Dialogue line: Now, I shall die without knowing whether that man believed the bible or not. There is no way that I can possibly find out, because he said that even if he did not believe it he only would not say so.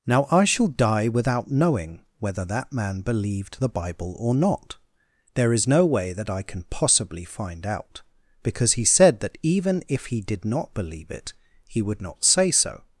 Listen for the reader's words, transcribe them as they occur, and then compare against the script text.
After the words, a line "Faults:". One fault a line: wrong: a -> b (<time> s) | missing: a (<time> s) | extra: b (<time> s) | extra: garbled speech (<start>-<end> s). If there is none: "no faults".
Now, I shall die without knowing whether that man believed the bible or not. There is no way that I can possibly find out, because he said that even if he did not believe it he would not say so.
Faults:
missing: only (11.8 s)